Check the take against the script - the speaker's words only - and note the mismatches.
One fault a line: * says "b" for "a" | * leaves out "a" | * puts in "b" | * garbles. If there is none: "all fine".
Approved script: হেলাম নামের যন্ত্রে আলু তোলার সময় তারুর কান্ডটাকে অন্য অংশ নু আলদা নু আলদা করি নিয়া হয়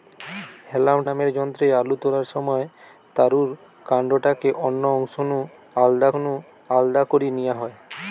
all fine